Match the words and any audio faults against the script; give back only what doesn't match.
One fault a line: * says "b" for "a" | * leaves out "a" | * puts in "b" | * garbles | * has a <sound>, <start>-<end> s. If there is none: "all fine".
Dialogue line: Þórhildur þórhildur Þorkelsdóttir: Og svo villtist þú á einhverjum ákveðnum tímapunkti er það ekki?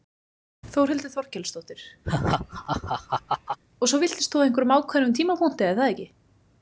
* leaves out "þórhildur"
* has a laugh, 2.0-3.6 s